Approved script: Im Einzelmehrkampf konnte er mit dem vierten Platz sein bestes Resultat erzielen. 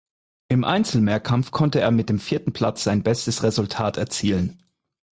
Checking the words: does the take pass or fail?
pass